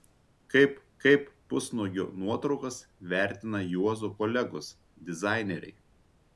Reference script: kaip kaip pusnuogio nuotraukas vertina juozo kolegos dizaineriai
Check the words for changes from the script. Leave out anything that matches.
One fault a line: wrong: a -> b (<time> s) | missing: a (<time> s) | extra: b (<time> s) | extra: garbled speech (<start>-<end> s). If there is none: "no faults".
no faults